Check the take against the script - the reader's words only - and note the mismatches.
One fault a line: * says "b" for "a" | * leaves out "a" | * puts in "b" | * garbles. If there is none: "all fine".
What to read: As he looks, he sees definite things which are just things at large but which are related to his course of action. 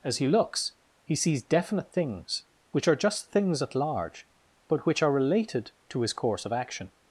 all fine